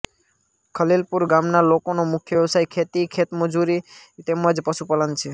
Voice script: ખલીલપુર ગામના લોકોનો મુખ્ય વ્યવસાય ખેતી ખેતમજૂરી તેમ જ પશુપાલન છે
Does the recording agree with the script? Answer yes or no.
yes